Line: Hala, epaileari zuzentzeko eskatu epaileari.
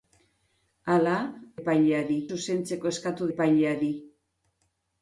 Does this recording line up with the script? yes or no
yes